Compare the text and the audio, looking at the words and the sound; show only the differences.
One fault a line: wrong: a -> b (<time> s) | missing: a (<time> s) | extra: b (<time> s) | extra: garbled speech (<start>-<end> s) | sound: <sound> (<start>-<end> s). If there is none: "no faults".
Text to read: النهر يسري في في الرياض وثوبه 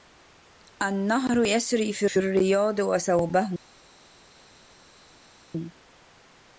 no faults